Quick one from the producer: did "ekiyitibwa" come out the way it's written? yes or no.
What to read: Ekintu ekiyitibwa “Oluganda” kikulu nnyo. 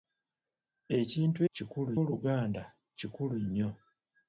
no